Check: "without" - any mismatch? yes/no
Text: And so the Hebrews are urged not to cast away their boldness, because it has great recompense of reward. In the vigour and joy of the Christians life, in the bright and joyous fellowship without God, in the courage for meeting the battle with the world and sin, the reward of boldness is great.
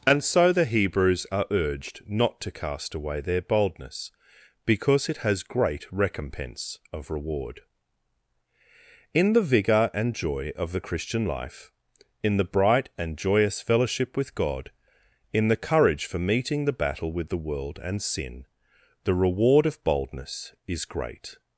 yes